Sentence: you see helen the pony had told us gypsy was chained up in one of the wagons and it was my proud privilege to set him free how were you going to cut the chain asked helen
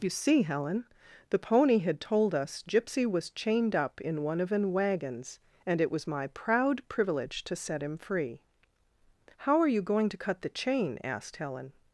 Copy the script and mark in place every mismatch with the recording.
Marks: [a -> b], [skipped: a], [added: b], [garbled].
you see helen the pony had told us gypsy was chained up in one of [the -> an] wagons and it was my proud privilege to set him free how [were -> are] you going to cut the chain asked helen